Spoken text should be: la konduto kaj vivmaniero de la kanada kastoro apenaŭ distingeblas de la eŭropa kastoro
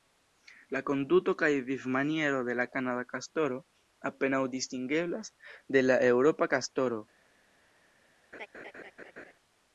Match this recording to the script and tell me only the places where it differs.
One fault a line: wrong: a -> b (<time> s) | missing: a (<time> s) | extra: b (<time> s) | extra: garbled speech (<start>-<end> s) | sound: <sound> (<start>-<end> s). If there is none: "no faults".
sound: laugh (8.3-9.3 s)